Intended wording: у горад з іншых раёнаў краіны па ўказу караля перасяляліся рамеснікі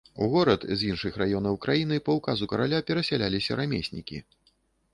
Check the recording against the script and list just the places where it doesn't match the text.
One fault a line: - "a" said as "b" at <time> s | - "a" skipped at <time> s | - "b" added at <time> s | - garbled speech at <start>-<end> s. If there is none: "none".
none